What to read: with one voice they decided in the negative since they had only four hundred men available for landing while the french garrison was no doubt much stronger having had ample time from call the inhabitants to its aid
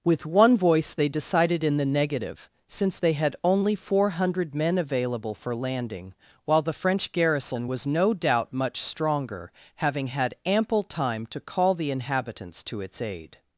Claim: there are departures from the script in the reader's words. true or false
true